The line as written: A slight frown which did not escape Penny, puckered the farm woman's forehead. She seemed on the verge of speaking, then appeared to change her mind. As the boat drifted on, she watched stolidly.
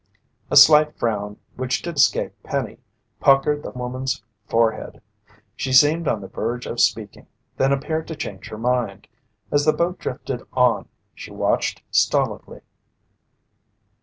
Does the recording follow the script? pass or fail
fail